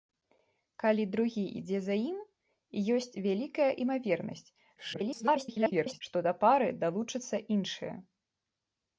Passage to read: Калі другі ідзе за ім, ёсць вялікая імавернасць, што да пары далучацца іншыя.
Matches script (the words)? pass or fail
fail